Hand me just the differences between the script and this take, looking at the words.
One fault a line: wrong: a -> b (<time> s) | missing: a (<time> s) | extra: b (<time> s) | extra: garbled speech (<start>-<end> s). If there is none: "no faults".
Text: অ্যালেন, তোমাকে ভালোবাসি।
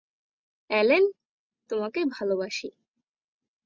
no faults